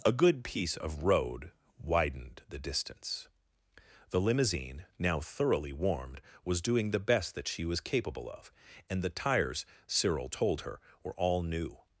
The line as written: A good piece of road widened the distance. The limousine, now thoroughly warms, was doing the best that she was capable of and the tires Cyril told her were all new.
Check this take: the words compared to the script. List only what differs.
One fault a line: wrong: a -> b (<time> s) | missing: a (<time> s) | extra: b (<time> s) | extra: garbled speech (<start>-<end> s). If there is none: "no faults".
wrong: warms -> warmed (5.7 s)